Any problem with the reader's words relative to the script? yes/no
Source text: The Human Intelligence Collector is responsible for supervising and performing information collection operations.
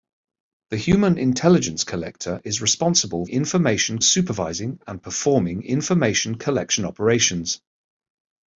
yes